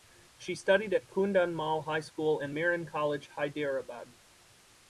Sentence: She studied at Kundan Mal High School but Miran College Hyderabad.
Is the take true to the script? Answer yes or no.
no